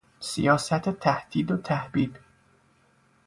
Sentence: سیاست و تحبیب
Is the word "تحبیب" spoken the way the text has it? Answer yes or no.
yes